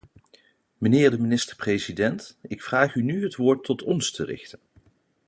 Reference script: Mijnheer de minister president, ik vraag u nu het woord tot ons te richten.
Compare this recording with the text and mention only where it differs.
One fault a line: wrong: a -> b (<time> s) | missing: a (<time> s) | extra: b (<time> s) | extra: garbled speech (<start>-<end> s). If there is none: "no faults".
no faults